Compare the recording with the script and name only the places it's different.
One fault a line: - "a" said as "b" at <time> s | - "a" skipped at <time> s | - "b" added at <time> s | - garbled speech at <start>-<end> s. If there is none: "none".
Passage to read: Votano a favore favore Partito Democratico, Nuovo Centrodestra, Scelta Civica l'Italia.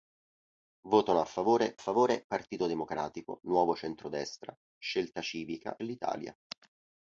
none